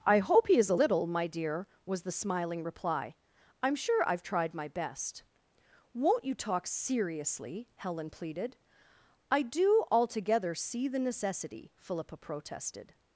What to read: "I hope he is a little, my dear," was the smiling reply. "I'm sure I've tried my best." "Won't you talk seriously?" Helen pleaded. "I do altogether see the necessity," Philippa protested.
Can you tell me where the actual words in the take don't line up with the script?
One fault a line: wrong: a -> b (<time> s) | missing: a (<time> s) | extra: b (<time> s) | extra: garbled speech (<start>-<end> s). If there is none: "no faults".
no faults